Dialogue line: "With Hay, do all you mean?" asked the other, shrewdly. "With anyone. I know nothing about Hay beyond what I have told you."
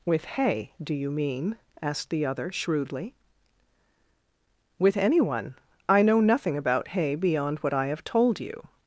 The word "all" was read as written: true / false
false